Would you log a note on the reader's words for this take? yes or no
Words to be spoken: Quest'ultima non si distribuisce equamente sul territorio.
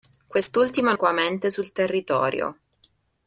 yes